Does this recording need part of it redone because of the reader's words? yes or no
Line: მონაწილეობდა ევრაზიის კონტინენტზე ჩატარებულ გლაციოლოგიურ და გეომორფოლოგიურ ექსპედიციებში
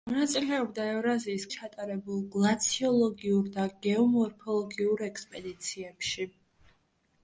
yes